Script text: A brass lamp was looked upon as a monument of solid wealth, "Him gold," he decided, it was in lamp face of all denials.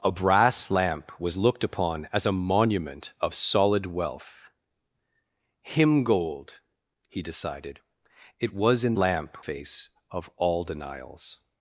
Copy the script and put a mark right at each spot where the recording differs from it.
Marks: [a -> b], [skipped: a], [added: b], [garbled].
A brass lamp was looked upon as a monument of solid wealth, "Him gold," he decided, it was in lamp face of all denials.